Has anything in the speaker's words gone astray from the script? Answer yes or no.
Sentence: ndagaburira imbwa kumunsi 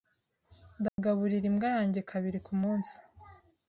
yes